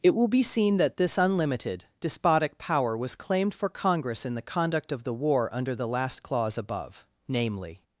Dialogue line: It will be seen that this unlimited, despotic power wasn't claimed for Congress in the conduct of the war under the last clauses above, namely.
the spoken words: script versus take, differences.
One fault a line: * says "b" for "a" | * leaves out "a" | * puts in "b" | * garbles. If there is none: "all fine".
* says "was" for "wasn't"
* says "clause" for "clauses"